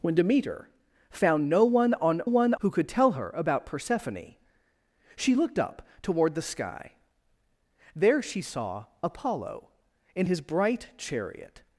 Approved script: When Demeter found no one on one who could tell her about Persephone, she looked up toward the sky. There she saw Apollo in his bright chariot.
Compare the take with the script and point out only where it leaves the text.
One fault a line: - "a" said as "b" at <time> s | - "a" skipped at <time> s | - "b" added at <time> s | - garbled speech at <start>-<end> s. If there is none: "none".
none